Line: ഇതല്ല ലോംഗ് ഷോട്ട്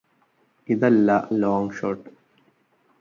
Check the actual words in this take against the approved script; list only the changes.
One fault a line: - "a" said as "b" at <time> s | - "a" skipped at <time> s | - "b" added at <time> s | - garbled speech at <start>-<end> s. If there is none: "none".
none